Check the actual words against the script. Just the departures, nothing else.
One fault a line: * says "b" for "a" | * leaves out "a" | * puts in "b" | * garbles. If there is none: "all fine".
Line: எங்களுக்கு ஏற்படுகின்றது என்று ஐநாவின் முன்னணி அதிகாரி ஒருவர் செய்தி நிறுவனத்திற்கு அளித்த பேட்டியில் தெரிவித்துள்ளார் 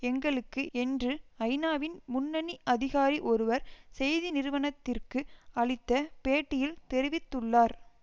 * leaves out "ஏற்படுகின்றது"